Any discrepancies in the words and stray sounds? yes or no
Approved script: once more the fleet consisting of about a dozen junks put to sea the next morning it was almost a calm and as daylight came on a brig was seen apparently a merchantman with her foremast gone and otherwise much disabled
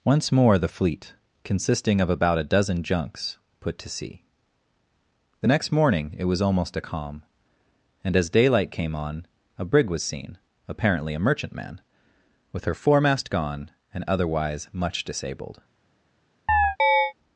yes